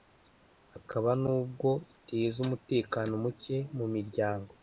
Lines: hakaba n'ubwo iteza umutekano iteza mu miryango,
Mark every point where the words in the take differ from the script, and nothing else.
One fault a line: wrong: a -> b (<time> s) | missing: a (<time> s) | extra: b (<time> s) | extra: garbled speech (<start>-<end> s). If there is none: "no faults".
wrong: iteza -> muke (3.2 s)